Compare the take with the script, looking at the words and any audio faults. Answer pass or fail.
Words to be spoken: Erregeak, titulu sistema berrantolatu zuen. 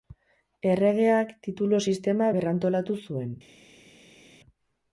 pass